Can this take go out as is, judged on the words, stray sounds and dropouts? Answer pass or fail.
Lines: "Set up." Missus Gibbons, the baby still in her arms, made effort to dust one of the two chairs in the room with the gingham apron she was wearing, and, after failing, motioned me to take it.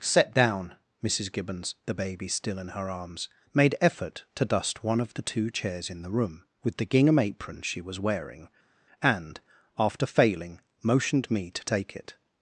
fail